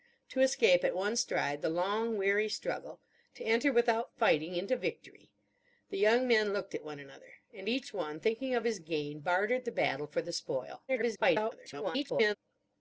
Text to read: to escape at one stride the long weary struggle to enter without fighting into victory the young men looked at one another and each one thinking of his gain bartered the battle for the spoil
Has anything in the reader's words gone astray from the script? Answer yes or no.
yes